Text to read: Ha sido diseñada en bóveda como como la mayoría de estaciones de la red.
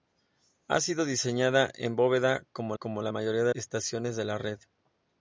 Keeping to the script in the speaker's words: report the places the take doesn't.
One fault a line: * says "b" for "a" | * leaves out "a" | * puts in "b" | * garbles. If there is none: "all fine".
all fine